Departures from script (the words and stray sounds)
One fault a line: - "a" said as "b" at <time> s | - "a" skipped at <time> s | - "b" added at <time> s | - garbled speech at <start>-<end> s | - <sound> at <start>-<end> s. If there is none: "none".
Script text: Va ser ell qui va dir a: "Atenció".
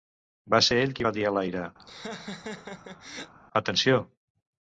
- "l'aire" added at 1.4 s
- laugh at 1.8-3.3 s